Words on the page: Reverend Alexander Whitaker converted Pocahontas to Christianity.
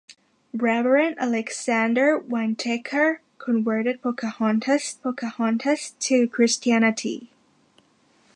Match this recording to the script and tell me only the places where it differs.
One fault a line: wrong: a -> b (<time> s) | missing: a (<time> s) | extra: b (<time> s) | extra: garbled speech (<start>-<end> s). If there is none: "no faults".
extra: Pocahontas (5.0 s)